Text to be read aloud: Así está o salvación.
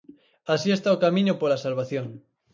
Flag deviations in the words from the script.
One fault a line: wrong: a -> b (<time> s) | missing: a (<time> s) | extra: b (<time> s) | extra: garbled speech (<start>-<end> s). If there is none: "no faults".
extra: camiño pola (1.0 s)